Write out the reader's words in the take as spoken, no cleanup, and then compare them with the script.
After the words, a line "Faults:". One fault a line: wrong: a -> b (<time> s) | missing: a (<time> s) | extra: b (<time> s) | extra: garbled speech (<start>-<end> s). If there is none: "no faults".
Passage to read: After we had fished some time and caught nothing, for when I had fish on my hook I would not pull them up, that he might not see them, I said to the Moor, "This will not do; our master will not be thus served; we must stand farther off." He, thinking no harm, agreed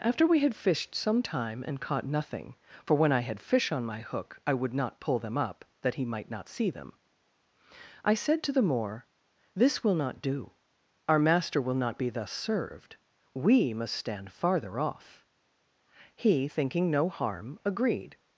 After we had fished some time and caught nothing, for when I had fish on my hook I would not pull them up, that he might not see them, I said to the Moor, "This will not do; our master will not be thus served; we must stand farther off." He, thinking no harm, agreed
Faults:
no faults